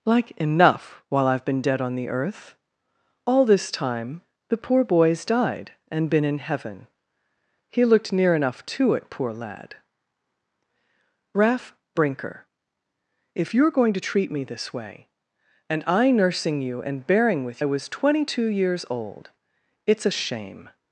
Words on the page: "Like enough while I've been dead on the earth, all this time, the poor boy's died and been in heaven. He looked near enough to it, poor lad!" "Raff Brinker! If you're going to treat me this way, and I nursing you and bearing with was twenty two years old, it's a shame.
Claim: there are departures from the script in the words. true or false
false